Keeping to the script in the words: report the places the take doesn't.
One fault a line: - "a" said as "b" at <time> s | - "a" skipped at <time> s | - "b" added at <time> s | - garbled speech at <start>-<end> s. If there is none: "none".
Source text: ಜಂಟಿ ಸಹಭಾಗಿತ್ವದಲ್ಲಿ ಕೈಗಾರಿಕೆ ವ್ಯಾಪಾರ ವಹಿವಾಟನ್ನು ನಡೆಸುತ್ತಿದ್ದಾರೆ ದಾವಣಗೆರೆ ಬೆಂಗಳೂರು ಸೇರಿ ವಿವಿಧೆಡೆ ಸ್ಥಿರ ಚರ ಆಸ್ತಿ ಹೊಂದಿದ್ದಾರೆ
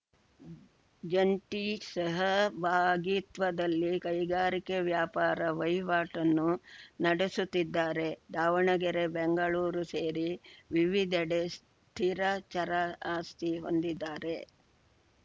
none